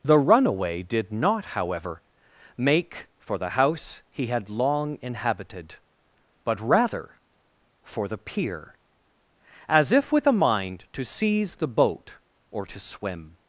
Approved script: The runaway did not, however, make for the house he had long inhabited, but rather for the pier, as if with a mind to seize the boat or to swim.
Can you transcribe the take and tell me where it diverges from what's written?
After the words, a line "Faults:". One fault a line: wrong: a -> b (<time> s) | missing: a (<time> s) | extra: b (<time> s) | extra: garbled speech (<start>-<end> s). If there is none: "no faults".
The runaway did not, however, make for the house he had long inhabited, but rather for the pier, as if with a mind to seize the boat or to swim.
Faults:
no faults